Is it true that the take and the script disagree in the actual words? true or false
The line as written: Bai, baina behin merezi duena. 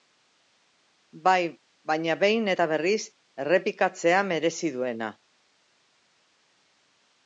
true